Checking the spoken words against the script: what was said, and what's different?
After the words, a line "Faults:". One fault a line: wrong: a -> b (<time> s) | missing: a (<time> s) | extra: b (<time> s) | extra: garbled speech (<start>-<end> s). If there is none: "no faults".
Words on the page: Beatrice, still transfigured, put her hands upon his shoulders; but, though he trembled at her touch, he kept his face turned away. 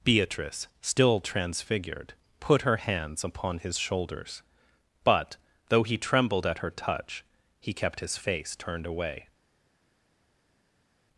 Beatrice, still transfigured, put her hands upon his shoulders; but, though he trembled at her touch, he kept his face turned away.
Faults:
no faults